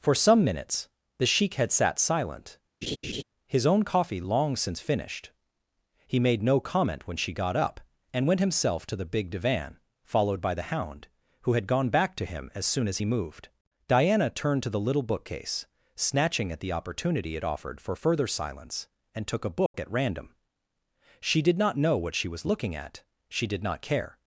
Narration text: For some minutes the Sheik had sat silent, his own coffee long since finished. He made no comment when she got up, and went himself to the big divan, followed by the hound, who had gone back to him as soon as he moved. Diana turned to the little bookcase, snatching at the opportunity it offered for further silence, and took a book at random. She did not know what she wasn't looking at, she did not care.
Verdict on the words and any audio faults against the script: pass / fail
fail